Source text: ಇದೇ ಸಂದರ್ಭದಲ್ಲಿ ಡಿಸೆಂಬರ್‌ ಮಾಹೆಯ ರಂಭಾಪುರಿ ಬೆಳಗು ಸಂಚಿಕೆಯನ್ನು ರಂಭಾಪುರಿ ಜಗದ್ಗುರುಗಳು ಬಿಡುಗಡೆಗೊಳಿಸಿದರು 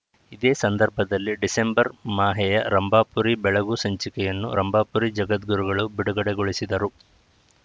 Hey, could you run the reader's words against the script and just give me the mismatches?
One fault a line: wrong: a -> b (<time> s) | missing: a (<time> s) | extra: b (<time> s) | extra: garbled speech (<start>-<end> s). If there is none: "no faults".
no faults